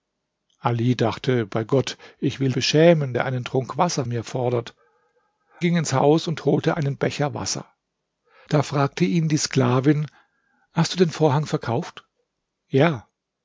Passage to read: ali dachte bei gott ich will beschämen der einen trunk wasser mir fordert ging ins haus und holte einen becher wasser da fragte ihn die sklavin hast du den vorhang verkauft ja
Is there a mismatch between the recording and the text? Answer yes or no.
no